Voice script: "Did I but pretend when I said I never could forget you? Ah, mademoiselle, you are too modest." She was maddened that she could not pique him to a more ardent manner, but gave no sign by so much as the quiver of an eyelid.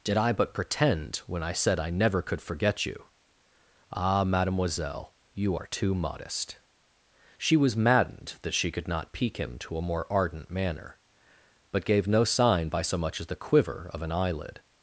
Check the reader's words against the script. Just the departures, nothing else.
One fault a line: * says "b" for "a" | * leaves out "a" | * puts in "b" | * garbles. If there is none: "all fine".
all fine